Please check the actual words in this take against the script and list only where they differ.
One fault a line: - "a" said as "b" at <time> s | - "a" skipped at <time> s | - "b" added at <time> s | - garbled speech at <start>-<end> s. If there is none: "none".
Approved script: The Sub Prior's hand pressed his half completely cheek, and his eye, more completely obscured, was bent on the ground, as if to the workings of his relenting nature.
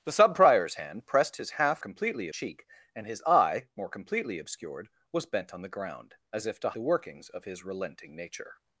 none